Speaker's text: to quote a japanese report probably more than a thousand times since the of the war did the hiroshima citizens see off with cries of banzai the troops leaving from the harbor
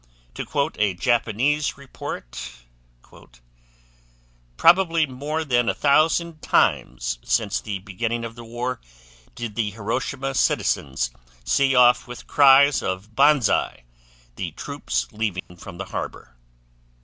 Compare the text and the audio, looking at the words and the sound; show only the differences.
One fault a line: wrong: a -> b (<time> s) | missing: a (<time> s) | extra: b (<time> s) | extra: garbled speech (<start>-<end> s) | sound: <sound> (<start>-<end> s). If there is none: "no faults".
extra: beginning (7.8 s)
sound: dropout (15.4-15.5 s)